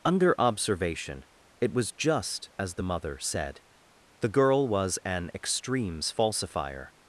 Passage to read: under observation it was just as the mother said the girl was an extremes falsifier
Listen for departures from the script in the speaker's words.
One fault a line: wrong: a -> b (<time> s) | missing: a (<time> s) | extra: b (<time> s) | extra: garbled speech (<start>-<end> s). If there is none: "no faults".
no faults